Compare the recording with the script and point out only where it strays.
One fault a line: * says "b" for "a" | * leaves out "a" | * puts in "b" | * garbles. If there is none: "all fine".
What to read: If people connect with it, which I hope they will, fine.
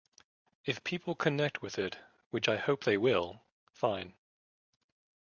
all fine